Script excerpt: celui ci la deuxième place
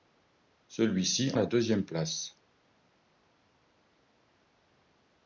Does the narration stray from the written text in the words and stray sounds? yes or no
no